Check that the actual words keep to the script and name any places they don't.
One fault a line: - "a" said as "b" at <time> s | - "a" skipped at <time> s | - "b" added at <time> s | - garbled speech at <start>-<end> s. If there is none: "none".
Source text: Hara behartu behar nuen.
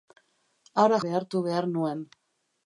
none